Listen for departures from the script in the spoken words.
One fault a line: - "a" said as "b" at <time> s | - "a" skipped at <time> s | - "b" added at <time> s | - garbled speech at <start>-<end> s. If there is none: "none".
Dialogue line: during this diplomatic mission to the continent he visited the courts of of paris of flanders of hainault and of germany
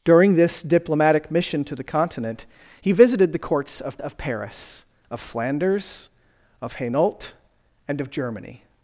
none